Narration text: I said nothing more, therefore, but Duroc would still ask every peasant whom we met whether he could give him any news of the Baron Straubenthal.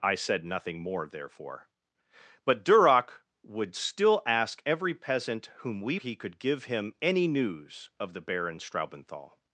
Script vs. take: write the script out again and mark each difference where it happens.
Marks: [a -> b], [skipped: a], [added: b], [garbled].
I said nothing more, therefore, but Duroc would still ask every peasant whom we [skipped: met whether] he could give him any news of the Baron Straubenthal.